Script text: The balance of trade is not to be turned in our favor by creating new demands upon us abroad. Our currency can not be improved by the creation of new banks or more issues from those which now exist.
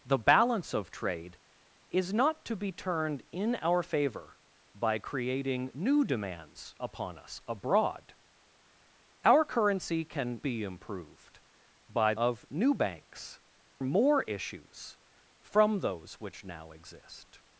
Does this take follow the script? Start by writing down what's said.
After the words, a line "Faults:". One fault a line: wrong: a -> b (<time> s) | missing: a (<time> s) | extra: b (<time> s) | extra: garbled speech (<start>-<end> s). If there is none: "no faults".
The balance of trade is not to be turned in our favor by creating new demands upon us abroad. Our currency can be improved by of new banks more issues from those which now exist.
Faults:
missing: not (10.4 s)
missing: the creation (12.1 s)
missing: or (13.4 s)